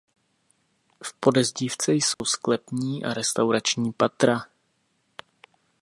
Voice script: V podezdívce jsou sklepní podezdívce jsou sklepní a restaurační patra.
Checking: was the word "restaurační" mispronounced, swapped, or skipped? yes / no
no